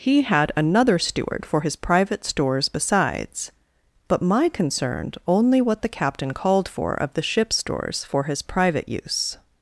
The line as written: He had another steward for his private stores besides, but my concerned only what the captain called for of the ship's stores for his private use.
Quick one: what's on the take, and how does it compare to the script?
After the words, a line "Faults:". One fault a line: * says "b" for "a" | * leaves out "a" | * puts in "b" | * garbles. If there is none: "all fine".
He had another steward for his private stores besides, but my concerned only what the captain called for of the ship's stores for his private use.
Faults:
all fine